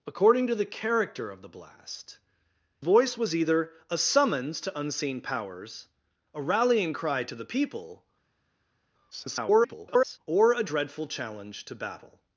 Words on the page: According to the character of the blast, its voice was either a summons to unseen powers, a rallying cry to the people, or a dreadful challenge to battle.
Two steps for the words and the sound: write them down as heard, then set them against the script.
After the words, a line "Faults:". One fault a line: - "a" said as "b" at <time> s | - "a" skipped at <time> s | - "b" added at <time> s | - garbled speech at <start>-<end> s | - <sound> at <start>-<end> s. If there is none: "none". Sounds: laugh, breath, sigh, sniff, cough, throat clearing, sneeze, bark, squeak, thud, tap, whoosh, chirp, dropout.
According to the character of the blast, voice was either a summons to unseen powers, a rallying cry to the people, [garbled] or a dreadful challenge to battle.
Faults:
- "its" skipped at 2.2 s
- garbled speech at 9.1-10.2 s